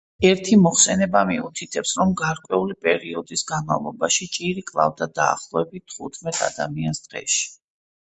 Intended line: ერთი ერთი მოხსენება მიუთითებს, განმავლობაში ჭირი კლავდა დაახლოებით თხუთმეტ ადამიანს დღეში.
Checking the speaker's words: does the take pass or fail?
fail